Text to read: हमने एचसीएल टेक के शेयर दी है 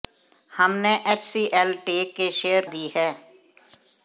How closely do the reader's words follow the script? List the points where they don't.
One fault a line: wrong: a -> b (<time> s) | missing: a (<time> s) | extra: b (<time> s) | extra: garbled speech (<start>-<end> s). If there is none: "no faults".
no faults